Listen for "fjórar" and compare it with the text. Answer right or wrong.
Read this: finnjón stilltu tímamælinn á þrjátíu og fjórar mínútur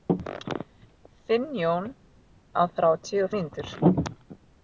wrong